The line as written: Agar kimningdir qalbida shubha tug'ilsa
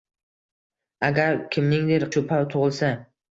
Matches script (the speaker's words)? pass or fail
fail